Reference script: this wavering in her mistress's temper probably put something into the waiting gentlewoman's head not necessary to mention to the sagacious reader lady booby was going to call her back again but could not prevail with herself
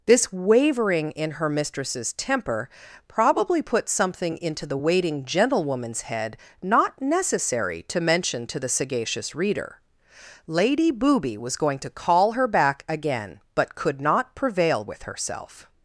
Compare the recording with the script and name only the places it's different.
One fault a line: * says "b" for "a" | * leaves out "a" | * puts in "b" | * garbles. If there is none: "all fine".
all fine